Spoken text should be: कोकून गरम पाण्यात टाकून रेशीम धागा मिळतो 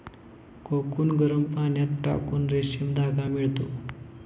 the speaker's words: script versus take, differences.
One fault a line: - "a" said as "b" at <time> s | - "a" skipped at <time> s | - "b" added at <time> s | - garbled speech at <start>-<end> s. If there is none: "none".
none